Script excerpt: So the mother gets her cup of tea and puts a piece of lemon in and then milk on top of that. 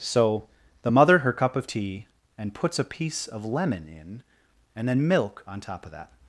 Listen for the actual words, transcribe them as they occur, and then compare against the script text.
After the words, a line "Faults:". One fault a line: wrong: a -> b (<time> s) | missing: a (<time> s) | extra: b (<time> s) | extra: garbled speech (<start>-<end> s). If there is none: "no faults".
So the mother her cup of tea and puts a piece of lemon in and then milk on top of that.
Faults:
missing: gets (1.2 s)